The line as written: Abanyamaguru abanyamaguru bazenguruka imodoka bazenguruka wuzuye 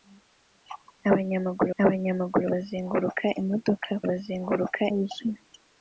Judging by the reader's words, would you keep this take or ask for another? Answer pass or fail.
pass